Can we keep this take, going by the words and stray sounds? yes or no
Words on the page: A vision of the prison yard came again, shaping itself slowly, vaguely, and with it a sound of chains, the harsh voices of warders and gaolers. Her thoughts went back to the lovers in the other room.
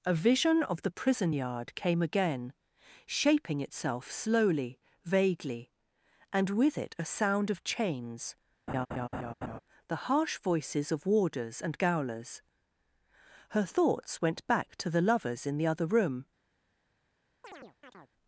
no